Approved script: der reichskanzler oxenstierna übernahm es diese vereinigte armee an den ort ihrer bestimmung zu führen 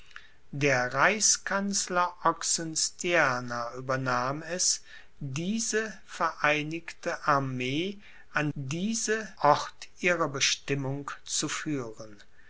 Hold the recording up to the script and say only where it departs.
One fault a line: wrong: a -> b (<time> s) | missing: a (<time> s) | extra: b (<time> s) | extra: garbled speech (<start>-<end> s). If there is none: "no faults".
wrong: den -> diese (8.5 s)